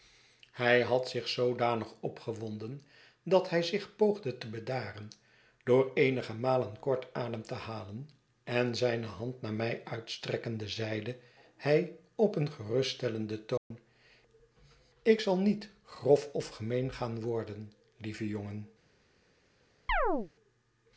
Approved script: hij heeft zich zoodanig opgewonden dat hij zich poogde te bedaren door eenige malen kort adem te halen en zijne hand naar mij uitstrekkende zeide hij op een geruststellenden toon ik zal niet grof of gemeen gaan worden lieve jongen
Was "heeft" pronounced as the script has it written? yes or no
no